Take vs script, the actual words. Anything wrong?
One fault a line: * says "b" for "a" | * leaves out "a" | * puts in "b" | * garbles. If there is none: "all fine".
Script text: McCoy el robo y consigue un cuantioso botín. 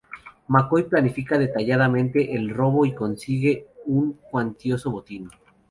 * puts in "planifica detalladamente"